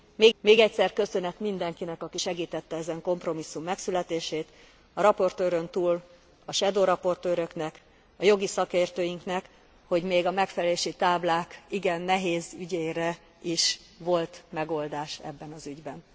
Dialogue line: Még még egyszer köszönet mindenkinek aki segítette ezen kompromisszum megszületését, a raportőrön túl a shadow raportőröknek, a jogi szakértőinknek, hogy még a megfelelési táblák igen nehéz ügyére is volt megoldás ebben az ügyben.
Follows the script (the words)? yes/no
yes